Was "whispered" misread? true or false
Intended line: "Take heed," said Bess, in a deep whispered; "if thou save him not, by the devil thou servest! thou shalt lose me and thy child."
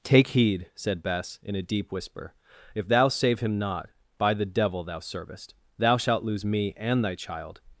true